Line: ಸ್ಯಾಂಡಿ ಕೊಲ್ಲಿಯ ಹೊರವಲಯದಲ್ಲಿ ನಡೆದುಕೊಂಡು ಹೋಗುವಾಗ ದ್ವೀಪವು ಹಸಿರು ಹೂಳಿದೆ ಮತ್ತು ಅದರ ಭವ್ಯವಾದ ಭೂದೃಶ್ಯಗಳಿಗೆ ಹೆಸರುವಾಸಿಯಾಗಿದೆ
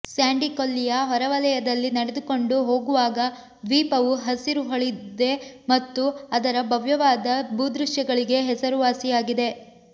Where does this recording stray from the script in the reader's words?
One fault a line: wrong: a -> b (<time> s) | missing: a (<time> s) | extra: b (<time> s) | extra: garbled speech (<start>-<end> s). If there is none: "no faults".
no faults